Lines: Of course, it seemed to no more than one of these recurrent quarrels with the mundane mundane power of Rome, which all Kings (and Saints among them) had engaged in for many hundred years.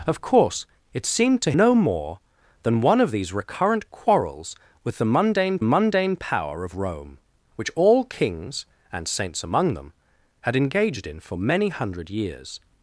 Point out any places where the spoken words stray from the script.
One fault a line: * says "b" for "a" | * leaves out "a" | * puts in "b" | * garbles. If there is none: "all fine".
all fine